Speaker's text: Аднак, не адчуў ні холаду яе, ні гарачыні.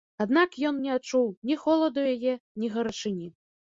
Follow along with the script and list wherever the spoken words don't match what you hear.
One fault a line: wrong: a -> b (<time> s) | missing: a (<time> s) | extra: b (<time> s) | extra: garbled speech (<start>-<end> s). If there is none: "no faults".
extra: ён (0.7 s)